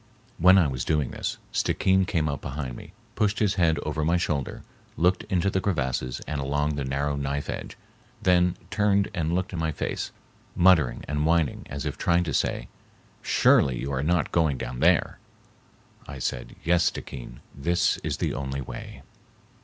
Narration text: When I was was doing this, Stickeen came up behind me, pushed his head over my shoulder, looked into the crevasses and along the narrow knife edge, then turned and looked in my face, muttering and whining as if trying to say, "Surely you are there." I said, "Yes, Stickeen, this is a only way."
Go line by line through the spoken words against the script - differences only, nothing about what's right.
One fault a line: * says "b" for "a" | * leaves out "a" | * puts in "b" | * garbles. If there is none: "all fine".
* leaves out "was"
* puts in "not going down"
* says "the" for "a"